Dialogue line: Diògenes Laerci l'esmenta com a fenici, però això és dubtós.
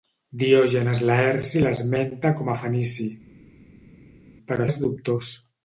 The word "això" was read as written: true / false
false